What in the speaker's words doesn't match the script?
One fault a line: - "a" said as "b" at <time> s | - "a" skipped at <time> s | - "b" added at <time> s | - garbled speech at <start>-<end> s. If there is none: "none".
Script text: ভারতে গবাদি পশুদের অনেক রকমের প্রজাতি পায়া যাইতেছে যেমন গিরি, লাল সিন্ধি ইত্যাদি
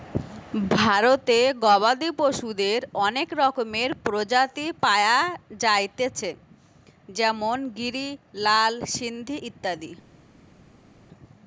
none